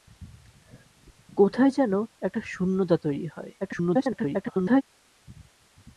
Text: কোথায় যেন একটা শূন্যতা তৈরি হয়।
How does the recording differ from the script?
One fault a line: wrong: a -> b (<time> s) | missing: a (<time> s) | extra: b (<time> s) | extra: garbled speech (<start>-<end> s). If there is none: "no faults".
extra: garbled speech (3.6-4.8 s)